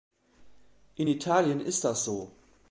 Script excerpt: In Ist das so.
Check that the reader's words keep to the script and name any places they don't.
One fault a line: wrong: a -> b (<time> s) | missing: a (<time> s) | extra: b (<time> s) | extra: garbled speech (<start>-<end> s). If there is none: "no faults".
extra: Italien (1.1 s)